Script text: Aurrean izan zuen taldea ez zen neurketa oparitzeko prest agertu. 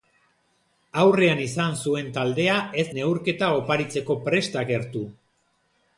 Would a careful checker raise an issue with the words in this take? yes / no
yes